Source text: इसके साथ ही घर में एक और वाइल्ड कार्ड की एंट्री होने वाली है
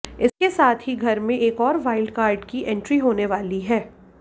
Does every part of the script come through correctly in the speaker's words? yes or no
yes